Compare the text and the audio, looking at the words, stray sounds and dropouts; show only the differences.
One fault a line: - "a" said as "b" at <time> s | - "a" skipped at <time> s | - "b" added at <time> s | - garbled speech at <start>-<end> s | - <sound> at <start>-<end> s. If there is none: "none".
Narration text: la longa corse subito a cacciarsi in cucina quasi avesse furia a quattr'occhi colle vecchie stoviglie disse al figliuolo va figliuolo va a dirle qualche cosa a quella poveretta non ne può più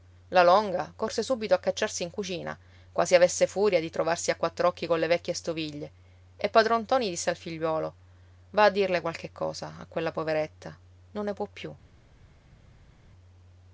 - "di trovarsi" added at 3.8 s
- "e padron ntoni" added at 6.4 s
- "figliuolo va" skipped at 8.6 s